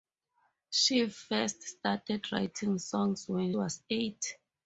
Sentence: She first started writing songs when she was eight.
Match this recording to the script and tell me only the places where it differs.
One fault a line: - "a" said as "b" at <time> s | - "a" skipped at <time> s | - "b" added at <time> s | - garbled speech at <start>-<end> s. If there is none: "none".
- "she" skipped at 3.5 s